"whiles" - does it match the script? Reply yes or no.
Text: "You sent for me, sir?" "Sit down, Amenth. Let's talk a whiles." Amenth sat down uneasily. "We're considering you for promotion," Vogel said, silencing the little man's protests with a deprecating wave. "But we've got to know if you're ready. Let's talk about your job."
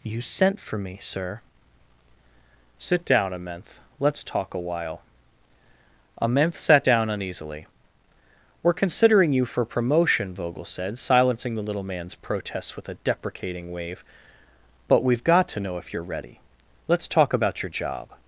no